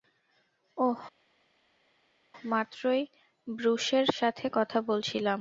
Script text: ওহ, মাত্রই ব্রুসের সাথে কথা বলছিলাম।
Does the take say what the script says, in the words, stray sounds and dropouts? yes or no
yes